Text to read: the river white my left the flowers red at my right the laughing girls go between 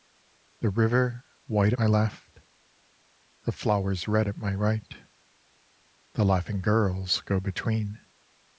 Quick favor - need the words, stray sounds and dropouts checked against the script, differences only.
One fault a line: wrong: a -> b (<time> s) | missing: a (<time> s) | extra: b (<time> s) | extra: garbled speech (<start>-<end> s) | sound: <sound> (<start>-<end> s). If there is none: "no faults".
no faults